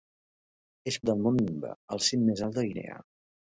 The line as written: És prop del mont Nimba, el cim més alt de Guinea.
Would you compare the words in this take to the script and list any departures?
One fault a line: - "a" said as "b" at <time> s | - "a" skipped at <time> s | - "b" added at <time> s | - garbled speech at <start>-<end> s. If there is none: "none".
- "prop" skipped at 0.9 s